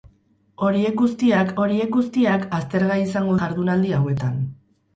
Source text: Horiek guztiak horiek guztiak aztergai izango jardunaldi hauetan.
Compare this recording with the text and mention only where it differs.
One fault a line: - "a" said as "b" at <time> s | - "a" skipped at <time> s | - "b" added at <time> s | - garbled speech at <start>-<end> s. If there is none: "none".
none